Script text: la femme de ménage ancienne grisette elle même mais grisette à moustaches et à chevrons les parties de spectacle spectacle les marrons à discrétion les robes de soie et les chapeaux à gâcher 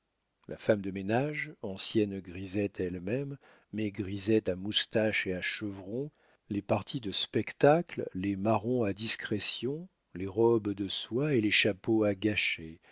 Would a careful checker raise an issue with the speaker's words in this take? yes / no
yes